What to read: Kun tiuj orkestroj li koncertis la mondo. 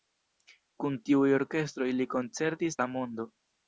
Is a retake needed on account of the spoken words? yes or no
no